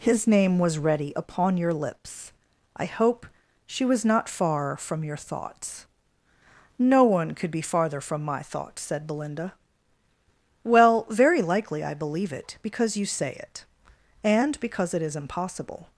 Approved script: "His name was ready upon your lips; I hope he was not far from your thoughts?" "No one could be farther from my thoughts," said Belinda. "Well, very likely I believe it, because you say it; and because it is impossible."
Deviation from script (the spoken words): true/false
true